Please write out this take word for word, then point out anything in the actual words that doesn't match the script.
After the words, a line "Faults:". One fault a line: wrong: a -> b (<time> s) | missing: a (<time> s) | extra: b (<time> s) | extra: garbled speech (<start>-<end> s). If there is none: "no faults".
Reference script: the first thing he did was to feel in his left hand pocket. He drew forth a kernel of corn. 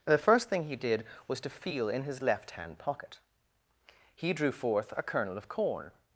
the first thing he did was to feel in his left hand pocket. He drew forth a kernel of corn.
Faults:
no faults